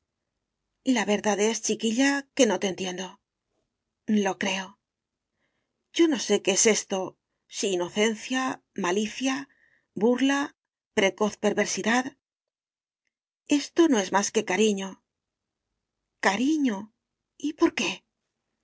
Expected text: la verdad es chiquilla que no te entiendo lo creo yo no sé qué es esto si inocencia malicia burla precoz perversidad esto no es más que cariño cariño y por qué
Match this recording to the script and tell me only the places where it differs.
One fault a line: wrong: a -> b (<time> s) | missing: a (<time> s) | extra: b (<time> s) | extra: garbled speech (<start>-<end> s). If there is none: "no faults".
no faults